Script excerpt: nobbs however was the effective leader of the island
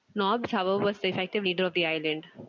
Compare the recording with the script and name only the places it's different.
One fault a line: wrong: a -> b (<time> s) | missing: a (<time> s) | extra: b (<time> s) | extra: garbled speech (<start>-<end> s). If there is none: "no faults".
no faults